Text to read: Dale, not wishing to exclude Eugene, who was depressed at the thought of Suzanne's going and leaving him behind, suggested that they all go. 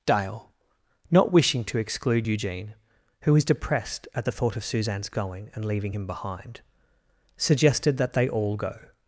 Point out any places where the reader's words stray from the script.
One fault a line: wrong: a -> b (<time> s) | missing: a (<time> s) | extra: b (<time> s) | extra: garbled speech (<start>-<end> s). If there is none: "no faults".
no faults